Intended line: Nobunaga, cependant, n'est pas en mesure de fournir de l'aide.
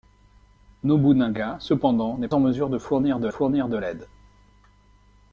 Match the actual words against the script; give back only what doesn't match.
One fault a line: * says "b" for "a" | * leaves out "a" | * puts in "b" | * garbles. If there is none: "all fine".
* leaves out "pas"
* puts in "fournir de"